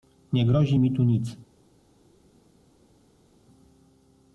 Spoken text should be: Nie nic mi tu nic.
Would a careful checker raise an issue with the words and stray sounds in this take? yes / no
yes